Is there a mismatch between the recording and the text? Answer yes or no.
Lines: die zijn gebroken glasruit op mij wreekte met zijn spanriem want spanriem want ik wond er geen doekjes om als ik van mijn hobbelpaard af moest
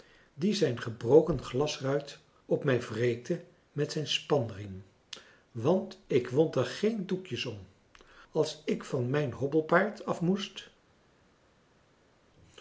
yes